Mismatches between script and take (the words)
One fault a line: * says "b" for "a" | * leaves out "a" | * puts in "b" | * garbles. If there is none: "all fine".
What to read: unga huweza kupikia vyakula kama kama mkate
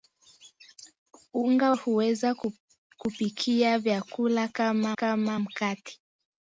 all fine